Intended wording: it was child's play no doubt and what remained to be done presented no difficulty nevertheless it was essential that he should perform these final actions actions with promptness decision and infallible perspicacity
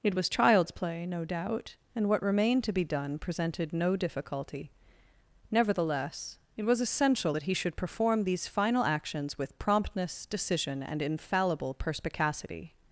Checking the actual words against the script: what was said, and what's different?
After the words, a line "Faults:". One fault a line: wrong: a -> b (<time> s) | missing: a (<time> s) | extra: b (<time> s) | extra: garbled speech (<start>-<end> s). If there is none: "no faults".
it was child's play no doubt and what remained to be done presented no difficulty nevertheless it was essential that he should perform these final actions with promptness decision and infallible perspicacity
Faults:
missing: actions (9.4 s)